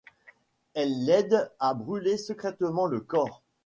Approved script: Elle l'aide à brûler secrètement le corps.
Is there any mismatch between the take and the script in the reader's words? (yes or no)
no